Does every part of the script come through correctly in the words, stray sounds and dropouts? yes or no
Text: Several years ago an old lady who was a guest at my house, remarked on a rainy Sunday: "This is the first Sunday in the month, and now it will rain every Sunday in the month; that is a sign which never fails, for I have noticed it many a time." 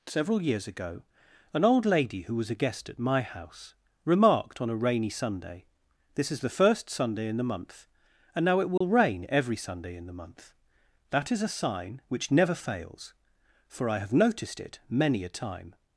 no